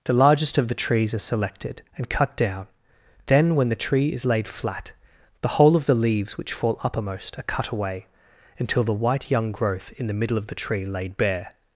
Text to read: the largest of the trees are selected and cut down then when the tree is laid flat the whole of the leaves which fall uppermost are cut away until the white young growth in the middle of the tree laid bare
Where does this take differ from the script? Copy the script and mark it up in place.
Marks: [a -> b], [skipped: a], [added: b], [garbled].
the largest of the trees are selected and cut down then when the tree is laid flat the whole of the leaves which fall uppermost are cut away until the white young growth in the middle of the tree laid bare